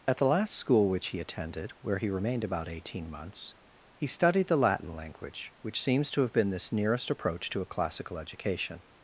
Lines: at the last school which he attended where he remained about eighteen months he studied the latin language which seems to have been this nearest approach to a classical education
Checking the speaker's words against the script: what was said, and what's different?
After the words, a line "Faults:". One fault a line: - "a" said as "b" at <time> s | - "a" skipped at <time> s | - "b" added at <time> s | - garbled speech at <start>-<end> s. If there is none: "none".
at the last school which he attended where he remained about eighteen months he studied the latin language which seems to have been this nearest approach to a classical education
Faults:
none